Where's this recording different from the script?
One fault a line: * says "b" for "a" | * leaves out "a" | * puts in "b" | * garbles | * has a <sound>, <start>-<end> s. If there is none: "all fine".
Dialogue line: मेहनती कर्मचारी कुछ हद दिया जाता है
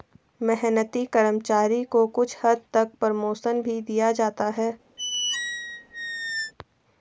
* puts in "को"
* puts in "तक प्रमोशन भी"
* has a squeak, 5.0-6.5 s